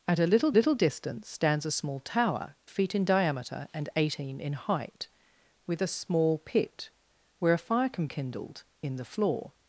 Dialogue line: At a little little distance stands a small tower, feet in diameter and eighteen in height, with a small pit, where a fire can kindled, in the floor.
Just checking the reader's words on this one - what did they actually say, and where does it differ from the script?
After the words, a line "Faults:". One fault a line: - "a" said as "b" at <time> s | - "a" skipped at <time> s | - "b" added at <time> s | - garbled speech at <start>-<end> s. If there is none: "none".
At a little little distance stands a small tower, feet in diameter and eighteen in height, with a small pit, where a fire can kindled, in the floor.
Faults:
none